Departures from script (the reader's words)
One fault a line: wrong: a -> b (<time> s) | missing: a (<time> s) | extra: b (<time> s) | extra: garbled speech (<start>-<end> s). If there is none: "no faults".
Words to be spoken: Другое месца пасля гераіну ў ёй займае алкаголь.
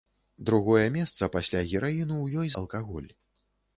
missing: займае (2.5 s)